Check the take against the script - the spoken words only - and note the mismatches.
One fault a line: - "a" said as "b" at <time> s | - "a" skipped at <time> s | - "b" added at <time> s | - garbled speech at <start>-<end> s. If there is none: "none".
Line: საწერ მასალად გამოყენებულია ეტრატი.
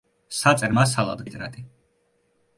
- "გამოყენებულია" skipped at 1.2 s